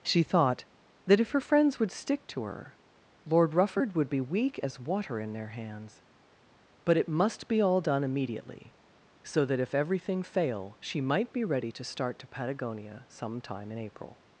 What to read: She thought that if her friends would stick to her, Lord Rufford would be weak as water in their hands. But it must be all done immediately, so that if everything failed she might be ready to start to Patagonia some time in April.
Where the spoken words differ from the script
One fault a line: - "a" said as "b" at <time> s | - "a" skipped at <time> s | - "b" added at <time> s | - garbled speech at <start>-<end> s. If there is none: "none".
- "failed" said as "fail" at 10.2 s